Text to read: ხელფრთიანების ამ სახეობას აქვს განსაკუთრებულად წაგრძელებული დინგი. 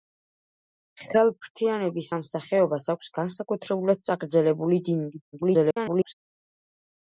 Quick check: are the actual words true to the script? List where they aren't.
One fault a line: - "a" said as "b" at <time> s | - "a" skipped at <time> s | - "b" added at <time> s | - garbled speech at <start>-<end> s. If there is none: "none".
- garbled speech at 5.3-6.1 s